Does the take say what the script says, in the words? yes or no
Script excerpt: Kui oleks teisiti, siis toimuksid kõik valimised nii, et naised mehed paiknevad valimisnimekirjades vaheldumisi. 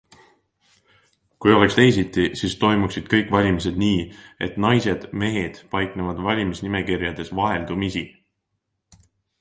yes